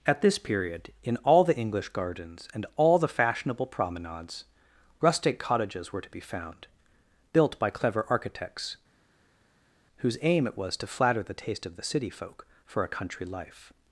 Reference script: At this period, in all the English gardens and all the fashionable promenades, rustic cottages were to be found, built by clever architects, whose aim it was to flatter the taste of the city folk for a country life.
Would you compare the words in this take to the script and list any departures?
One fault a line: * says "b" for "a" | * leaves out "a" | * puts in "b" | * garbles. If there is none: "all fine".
all fine